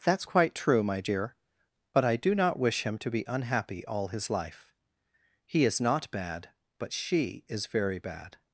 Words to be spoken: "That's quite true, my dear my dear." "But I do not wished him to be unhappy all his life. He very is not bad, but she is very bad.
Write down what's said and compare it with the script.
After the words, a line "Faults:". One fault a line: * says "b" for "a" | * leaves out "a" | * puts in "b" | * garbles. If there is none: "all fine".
"That's quite true, my dear." "But I do not wish him to be unhappy all his life. He is not bad, but she is very bad.
Faults:
* leaves out "my dear"
* says "wish" for "wished"
* leaves out "very"